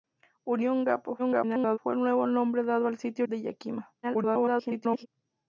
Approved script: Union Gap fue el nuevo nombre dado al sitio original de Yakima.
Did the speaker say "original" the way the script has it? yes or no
no